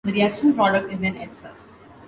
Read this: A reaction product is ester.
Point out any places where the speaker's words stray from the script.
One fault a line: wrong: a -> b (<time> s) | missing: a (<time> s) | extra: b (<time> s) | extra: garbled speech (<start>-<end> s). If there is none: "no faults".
wrong: A -> The (0.0 s)
extra: an (1.0 s)